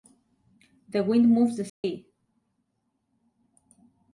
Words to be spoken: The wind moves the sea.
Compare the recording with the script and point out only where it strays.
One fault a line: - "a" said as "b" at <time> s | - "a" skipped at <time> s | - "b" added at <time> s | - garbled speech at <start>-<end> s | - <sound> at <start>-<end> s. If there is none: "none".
- dropout at 1.7-1.8 s